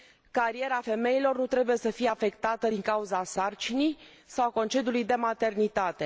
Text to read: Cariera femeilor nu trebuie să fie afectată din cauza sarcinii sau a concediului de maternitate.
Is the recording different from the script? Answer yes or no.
no